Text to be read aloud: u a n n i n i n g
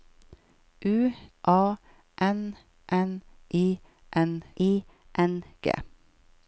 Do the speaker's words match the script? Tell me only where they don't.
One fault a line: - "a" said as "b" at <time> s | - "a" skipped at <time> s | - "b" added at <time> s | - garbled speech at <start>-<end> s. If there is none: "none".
none